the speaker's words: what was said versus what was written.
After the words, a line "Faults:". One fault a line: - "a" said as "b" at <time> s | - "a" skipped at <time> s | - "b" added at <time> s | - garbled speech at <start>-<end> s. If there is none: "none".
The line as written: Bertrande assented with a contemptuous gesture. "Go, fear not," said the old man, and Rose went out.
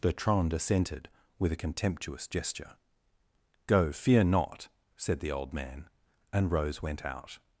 Bertrande assented with a contemptuous gesture. "Go, fear not," said the old man, and Rose went out.
Faults:
none